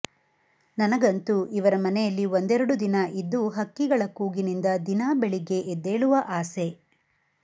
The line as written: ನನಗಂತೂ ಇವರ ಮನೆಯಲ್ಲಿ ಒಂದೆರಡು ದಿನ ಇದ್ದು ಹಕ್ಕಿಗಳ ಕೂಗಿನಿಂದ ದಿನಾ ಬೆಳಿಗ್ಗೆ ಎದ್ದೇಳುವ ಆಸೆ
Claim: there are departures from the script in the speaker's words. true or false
false